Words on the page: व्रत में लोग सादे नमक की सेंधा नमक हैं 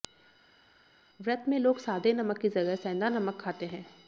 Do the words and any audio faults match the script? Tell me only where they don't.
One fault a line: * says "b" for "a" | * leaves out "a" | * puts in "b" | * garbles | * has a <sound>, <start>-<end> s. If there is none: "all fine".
* puts in "जगह"
* puts in "खाते"